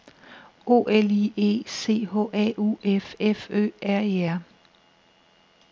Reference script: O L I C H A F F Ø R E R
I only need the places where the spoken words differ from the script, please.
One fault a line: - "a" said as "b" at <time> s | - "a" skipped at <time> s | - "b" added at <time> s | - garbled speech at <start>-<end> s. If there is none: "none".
- "E" added at 1.3 s
- "U" added at 2.6 s